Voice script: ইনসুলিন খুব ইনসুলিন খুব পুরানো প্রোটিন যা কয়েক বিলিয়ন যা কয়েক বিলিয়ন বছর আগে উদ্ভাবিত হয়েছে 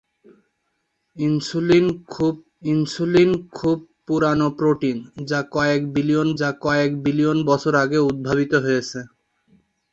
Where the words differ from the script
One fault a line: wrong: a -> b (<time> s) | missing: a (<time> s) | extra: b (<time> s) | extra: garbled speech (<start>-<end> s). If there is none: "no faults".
no faults